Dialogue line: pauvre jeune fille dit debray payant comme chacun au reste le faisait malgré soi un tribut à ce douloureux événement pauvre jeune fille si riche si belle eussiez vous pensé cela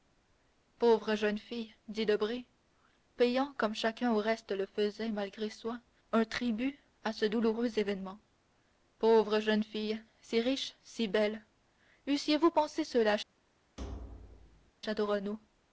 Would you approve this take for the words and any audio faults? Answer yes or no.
no